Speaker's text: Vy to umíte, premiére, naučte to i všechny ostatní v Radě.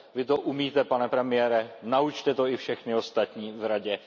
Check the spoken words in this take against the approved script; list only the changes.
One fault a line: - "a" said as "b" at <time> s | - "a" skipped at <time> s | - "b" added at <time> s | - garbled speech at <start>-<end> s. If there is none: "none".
- "pane" added at 0.8 s